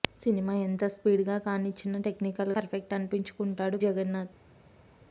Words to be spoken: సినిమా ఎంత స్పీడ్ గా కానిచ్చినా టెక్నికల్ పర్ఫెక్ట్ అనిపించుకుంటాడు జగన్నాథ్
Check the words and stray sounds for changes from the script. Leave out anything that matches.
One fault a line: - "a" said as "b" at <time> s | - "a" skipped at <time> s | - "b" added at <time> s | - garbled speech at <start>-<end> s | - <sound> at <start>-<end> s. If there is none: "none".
none